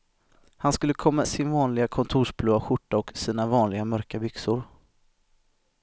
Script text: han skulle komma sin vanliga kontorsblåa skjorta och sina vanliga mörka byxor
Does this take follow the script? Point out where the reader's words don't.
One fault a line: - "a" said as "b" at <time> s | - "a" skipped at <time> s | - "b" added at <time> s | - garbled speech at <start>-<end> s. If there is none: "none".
none